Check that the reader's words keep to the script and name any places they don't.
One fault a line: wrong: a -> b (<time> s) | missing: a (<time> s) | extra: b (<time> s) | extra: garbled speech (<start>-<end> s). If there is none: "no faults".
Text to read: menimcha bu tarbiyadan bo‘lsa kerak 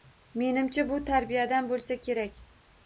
no faults